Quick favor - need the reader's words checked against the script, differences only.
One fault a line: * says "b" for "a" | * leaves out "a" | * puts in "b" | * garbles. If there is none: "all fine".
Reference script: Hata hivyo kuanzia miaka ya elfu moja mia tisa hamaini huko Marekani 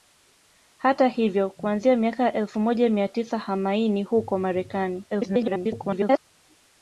* garbles